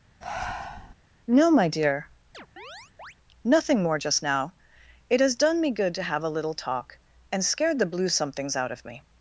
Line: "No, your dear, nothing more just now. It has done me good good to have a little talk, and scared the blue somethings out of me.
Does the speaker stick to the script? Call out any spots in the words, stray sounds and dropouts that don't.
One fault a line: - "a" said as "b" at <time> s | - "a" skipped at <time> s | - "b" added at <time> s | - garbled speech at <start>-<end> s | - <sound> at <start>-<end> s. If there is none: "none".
- breath at 0.2-0.9 s
- "your" said as "my" at 1.5 s
- chirp at 2.3-3.1 s
- "good" skipped at 5.9 s